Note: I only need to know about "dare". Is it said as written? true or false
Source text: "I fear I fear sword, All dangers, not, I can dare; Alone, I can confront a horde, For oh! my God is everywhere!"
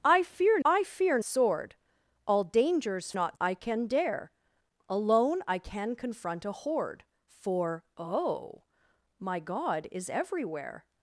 true